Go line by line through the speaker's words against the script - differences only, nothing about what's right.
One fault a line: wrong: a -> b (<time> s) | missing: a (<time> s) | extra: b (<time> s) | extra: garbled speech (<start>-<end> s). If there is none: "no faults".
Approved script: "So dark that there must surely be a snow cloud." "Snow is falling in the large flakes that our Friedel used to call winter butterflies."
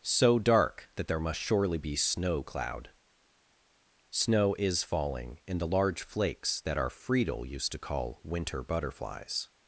missing: a (2.0 s)